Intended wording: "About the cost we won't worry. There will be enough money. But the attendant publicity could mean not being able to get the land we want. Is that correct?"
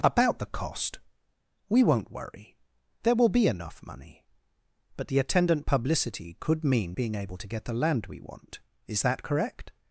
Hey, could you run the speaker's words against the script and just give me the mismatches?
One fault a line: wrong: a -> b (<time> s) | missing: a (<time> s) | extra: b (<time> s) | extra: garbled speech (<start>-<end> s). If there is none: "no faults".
missing: not (7.0 s)